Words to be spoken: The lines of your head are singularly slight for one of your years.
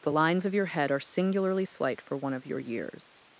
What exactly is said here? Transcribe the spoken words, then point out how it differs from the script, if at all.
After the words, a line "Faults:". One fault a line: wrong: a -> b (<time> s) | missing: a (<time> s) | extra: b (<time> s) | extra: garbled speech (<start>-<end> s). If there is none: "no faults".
The lines of your head are singularly slight for one of your years.
Faults:
no faults